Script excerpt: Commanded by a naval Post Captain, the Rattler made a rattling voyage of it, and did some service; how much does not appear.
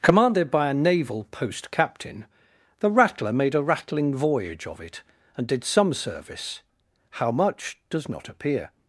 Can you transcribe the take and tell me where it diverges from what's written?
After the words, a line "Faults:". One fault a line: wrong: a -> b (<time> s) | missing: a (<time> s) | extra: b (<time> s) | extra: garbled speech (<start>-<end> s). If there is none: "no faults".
Commanded by a naval Post Captain, the Rattler made a rattling voyage of it, and did some service; how much does not appear.
Faults:
no faults